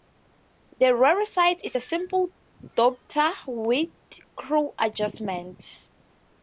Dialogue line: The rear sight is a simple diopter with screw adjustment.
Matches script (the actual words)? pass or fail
pass